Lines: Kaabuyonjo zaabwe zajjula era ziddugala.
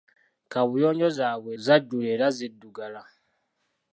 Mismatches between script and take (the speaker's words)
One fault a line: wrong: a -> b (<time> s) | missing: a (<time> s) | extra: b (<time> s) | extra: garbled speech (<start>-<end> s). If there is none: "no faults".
no faults